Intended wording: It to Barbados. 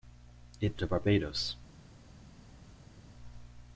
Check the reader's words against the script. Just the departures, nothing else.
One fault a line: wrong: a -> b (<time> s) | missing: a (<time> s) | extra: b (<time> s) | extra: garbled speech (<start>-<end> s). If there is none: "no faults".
no faults